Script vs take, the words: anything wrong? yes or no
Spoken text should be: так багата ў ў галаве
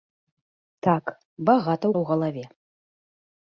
no